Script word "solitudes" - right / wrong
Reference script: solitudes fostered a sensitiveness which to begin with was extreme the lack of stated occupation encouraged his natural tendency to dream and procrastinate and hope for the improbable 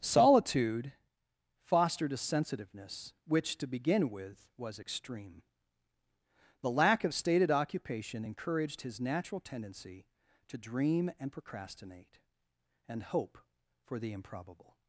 wrong